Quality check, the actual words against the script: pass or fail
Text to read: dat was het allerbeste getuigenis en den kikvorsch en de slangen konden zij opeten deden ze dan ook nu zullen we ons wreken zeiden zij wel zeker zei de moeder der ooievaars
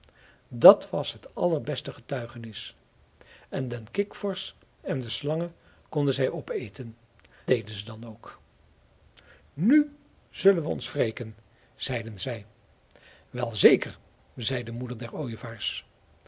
pass